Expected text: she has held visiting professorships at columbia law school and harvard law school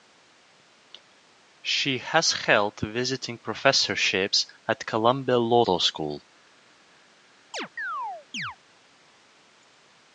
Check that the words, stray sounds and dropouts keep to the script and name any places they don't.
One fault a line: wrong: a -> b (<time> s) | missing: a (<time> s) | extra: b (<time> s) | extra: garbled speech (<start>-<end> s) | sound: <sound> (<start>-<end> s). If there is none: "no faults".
missing: school and harvard (5.7 s)
sound: chirp (7.5-8.6 s)